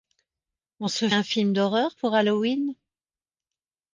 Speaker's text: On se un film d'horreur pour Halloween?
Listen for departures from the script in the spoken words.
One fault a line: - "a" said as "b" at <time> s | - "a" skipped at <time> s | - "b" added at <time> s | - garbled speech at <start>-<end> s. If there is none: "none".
none